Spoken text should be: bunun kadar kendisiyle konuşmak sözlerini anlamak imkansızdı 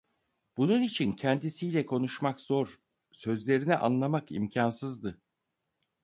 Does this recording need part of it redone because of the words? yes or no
yes